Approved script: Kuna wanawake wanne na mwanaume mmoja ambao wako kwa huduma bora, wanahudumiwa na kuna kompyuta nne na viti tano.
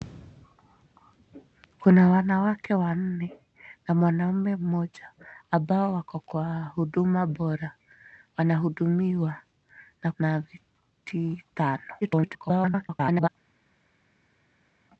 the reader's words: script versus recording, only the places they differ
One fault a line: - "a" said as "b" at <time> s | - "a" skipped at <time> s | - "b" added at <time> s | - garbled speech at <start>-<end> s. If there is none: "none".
- "kuna kompyuta nne" skipped at 10.1 s
- garbled speech at 12.0-13.3 s